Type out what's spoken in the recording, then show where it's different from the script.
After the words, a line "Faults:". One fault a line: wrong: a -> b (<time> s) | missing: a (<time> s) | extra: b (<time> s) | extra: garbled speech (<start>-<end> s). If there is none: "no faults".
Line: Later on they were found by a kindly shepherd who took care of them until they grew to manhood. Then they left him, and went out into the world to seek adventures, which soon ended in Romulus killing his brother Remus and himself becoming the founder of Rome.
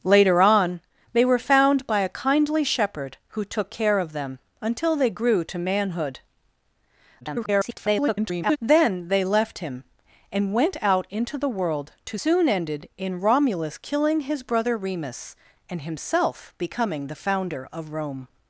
Later on they were found by a kindly shepherd who took care of them until they grew to manhood. [garbled] Then they left him, and went out into the world to soon ended in Romulus killing his brother Remus and himself becoming the founder of Rome.
Faults:
extra: garbled speech (7.2-8.6 s)
missing: seek adventures which (12.2 s)